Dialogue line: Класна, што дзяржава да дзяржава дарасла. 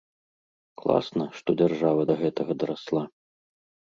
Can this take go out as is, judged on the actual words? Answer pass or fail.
fail